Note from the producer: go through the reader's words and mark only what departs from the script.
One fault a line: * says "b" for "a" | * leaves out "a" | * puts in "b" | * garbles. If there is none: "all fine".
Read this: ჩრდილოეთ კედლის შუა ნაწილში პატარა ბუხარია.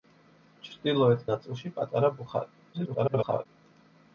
* leaves out "კედლის შუა"
* garbles